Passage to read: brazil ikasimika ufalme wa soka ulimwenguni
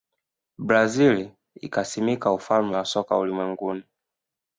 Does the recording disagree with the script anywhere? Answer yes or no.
no